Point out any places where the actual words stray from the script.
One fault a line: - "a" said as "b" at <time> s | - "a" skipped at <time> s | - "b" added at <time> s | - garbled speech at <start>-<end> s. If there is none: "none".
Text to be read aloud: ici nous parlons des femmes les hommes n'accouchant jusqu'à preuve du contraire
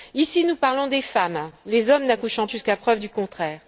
none